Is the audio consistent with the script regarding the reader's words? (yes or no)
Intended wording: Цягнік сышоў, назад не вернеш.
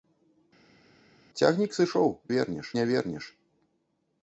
no